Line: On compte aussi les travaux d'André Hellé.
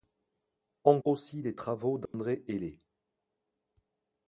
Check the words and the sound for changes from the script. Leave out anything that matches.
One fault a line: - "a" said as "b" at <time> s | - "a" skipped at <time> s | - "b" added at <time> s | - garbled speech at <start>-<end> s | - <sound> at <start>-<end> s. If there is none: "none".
- "compte" skipped at 1.0 s
- dropout at 2.1-2.1 s